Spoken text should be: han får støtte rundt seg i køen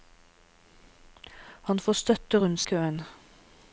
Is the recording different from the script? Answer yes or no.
yes